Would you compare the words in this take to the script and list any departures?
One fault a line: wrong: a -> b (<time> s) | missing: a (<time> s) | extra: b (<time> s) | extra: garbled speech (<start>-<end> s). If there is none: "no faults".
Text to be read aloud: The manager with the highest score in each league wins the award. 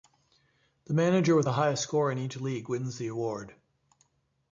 no faults